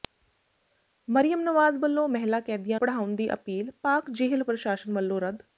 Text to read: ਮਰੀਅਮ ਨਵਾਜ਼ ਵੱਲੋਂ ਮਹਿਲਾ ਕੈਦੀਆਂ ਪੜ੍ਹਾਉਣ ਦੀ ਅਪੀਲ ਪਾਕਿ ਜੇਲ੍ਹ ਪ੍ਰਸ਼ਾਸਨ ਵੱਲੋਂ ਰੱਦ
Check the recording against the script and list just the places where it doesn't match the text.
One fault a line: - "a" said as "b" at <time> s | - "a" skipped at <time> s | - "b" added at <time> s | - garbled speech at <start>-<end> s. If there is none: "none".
none